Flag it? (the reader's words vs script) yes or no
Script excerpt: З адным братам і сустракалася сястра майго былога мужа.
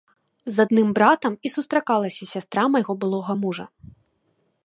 no